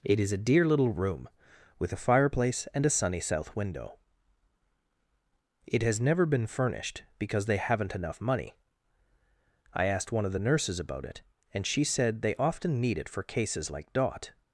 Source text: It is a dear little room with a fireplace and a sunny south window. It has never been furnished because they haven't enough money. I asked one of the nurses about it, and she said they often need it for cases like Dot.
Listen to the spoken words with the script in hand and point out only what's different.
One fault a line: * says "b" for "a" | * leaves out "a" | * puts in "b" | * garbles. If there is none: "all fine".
all fine